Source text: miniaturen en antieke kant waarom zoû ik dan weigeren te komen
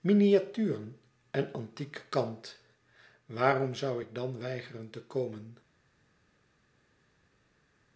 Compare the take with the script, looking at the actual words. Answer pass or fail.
pass